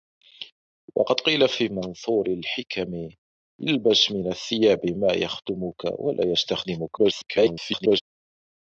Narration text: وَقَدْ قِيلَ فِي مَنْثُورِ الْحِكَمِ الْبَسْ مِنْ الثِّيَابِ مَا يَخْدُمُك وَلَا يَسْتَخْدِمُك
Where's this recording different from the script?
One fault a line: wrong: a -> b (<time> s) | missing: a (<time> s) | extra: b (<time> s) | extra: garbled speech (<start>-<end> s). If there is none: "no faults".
extra: garbled speech (7.0-8.0 s)